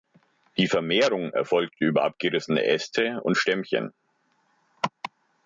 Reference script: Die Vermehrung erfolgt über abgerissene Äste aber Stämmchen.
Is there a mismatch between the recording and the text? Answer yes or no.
yes